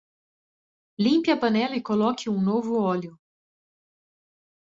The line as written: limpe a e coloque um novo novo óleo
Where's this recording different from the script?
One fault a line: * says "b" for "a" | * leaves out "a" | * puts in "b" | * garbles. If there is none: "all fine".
* puts in "panela"
* leaves out "novo"